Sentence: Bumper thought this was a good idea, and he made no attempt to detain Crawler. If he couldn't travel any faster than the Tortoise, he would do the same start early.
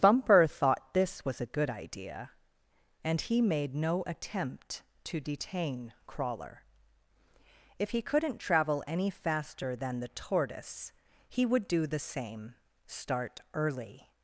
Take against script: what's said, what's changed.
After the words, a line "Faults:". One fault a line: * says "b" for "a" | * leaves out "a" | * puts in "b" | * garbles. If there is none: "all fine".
Bumper thought this was a good idea, and he made no attempt to detain Crawler. If he couldn't travel any faster than the Tortoise, he would do the same start early.
Faults:
all fine